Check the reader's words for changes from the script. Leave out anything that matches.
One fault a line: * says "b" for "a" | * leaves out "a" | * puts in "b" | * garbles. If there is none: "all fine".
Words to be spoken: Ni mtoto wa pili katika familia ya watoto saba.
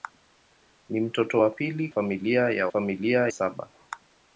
* leaves out "katika"
* says "familia" for "watoto"